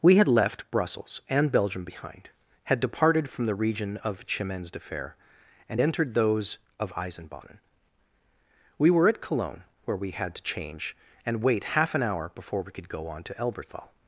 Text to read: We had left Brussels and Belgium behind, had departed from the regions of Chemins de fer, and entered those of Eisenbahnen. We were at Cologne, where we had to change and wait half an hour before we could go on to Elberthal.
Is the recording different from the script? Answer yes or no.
yes